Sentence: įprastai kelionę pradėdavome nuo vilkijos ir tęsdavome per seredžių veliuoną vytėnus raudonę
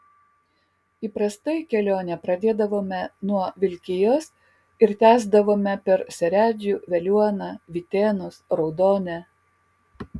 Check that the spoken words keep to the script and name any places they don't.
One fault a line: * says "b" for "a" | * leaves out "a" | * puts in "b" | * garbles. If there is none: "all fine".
all fine